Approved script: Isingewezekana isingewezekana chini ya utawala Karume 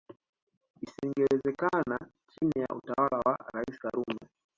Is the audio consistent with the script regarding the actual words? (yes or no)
no